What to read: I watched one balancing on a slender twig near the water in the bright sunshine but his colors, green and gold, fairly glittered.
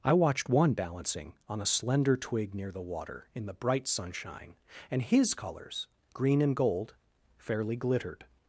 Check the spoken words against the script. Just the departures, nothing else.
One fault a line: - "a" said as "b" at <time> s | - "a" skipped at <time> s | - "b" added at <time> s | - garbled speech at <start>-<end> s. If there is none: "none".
- "but" said as "and" at 4.9 s